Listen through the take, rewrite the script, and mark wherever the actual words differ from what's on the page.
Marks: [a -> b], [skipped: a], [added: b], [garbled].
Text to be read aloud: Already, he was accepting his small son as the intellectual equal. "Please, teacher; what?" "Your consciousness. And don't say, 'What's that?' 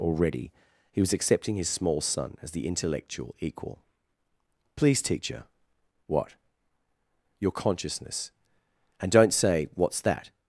Already, he was accepting his small son as the intellectual equal. "Please, teacher; what?" "Your consciousness. And don't say, 'What's that?'